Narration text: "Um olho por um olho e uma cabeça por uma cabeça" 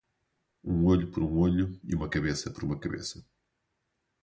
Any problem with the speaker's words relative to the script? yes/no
no